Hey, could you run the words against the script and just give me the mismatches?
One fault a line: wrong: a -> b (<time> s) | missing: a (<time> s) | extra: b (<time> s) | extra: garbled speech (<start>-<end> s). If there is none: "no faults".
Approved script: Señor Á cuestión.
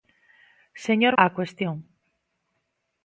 no faults